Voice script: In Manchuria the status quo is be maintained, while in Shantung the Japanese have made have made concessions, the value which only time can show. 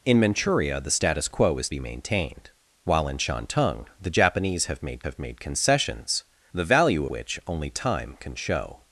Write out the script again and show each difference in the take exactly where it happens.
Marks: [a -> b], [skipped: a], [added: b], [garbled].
In Manchuria the status quo is be maintained, while in Shantung the Japanese have made have made concessions, the value which only time can show.